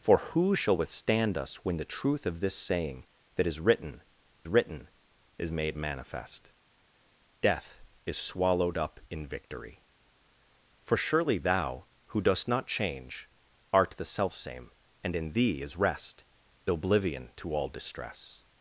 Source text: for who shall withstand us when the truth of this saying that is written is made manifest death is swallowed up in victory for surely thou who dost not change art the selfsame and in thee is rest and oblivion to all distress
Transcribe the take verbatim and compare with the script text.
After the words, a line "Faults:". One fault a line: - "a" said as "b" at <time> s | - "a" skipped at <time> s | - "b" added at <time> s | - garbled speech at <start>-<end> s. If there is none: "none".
for who shall withstand us when the truth of this saying that is written written is made manifest death is swallowed up in victory for surely thou who dost not change art the selfsame and in thee is rest oblivion to all distress
Faults:
- "written" added at 4.5 s
- "and" skipped at 16.2 s